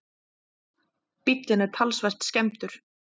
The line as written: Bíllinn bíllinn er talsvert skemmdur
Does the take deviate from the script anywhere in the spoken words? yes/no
yes